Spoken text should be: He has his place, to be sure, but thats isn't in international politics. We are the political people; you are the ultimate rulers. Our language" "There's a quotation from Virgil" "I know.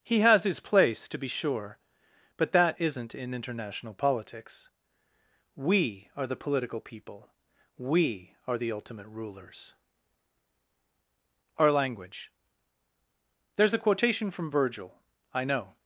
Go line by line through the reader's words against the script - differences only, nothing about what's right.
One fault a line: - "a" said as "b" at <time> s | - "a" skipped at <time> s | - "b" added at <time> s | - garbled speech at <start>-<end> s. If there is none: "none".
- "thats" said as "that" at 2.5 s
- "you" said as "we" at 7.8 s